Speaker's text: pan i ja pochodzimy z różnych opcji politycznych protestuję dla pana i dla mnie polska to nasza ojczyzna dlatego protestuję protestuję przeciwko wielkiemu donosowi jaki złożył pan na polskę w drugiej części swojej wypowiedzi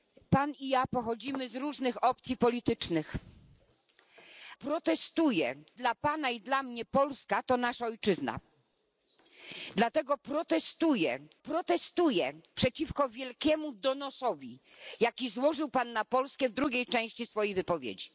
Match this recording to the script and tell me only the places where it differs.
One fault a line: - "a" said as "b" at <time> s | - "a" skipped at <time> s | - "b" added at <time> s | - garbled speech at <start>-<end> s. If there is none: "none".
none